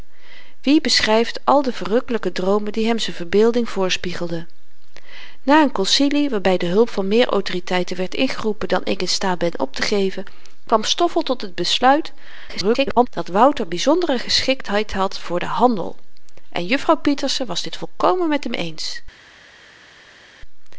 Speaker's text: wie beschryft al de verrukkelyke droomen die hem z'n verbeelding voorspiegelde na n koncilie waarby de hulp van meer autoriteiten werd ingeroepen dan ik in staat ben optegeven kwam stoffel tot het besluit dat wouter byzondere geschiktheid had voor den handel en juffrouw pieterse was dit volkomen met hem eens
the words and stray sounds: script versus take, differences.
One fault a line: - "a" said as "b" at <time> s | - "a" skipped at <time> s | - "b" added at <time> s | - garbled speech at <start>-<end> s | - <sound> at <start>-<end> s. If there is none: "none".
- garbled speech at 12.5-13.1 s